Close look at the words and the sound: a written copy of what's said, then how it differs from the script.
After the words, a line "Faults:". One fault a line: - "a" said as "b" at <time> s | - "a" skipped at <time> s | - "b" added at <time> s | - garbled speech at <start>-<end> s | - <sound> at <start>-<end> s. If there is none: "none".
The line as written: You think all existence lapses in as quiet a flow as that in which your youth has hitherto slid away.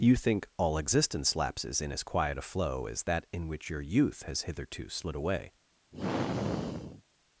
You think all existence lapses in as quiet a flow as that in which your youth has hitherto slid away.
Faults:
- sigh at 5.9-7.0 s